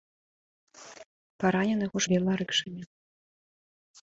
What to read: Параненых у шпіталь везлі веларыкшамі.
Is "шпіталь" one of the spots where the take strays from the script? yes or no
yes